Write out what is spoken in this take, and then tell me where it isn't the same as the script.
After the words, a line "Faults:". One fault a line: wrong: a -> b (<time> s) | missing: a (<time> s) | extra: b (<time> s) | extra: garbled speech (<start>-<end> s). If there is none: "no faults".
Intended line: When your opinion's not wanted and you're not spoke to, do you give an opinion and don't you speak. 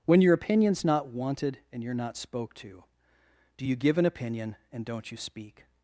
When your opinion's not wanted and you're not spoke to, do you give an opinion and don't you speak.
Faults:
no faults